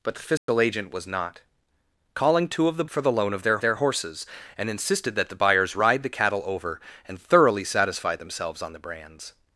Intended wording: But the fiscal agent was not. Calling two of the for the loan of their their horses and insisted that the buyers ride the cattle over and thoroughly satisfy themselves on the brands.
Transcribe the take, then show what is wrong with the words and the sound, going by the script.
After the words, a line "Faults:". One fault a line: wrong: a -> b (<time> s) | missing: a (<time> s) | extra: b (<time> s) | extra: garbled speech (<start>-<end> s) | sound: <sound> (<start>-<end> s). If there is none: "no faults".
But the fiscal agent was not. Calling two of the for the loan of their their horses and insisted that the buyers ride the cattle over and thoroughly satisfy themselves on the brands.
Faults:
sound: dropout (0.4-0.5 s)